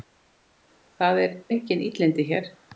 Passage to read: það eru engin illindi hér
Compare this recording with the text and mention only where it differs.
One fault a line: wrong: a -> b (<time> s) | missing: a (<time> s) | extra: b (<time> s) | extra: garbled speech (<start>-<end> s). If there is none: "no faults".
missing: eru (1.2 s)